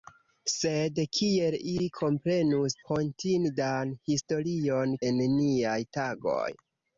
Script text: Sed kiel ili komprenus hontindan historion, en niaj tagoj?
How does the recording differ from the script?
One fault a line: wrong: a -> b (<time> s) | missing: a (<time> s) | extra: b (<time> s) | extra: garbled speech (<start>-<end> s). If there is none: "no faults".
no faults